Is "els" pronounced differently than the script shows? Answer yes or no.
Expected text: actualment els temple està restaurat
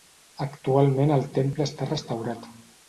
yes